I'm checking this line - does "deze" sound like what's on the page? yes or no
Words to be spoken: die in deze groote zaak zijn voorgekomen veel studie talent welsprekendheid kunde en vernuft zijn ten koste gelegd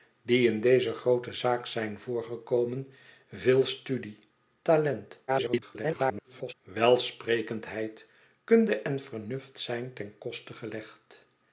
yes